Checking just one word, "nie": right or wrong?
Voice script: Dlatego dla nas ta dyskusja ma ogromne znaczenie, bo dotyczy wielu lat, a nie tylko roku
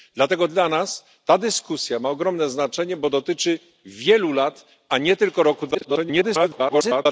right